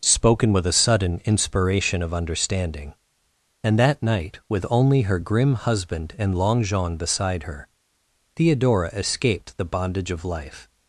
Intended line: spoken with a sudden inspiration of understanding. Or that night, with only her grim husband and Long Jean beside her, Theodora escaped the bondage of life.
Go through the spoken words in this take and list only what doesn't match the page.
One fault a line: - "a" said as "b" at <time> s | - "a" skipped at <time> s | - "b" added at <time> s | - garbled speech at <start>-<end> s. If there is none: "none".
- "Or" said as "And" at 3.6 s